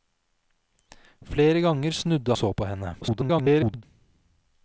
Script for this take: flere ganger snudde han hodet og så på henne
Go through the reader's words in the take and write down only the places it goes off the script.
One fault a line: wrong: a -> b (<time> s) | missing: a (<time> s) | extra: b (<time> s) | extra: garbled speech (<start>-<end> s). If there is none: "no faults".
missing: han hodet og (2.4 s)
extra: garbled speech (3.0-3.8 s)